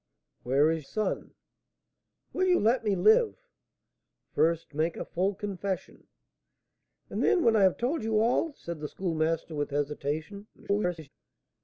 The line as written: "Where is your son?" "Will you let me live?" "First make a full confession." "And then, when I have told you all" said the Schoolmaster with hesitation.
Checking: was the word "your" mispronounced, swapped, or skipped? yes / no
yes